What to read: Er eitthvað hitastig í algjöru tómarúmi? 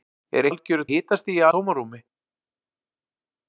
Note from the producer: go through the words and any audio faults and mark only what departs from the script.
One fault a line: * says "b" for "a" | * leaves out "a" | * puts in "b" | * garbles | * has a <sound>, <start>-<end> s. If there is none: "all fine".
* says "algjöru" for "eitthvað"
* leaves out "algjöru"